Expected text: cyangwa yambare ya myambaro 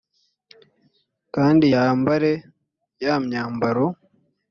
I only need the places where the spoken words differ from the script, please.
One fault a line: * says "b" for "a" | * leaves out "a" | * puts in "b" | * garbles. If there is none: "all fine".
* says "kandi" for "cyangwa"